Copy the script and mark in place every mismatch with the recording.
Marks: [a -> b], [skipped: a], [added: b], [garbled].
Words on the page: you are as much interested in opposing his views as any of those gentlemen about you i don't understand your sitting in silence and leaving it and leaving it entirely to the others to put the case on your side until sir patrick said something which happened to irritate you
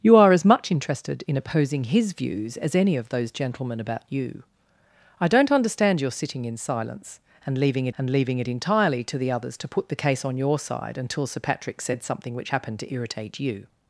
you are as much interested in opposing his views as any of those gentlemen about you i don't understand your sitting in silence and leaving it and leaving it entirely to the others to put the case on your side until sir patrick said something which happened to irritate you